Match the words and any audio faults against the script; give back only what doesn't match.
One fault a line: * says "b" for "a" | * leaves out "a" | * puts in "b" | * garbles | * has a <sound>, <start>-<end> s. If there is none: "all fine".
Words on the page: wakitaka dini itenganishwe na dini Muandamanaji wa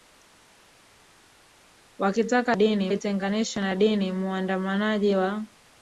all fine